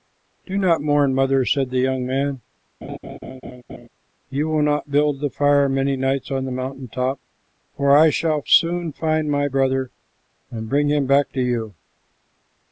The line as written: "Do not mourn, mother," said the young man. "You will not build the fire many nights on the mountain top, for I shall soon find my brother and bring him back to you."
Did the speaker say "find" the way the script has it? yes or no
yes